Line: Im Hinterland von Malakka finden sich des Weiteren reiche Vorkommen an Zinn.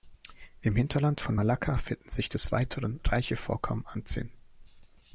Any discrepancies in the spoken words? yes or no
no